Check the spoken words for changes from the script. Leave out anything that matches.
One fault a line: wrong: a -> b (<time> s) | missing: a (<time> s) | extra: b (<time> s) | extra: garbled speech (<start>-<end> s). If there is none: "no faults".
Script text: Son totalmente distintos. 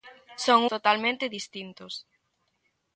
no faults